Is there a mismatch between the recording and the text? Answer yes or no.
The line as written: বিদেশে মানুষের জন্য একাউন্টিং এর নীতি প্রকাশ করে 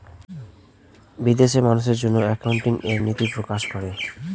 no